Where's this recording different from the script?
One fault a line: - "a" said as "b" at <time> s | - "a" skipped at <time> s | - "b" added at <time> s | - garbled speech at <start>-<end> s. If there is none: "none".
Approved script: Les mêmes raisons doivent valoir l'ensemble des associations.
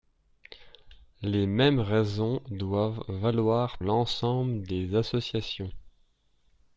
none